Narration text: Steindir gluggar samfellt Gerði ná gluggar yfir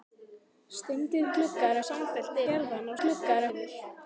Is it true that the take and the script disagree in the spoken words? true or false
false